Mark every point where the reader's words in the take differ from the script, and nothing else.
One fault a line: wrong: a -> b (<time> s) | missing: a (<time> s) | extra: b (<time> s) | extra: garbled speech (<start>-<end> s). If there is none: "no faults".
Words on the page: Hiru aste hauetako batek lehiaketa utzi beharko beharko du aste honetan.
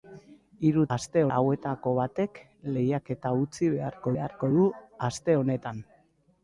no faults